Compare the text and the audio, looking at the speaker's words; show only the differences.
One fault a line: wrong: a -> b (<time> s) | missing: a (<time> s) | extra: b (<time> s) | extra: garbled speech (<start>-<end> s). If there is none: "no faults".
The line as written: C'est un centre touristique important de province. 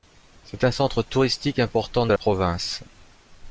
no faults